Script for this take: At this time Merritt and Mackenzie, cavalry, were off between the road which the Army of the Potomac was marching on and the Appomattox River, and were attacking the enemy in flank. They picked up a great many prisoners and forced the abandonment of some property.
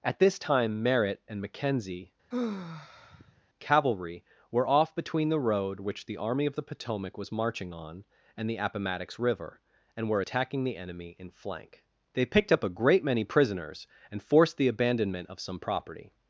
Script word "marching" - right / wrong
right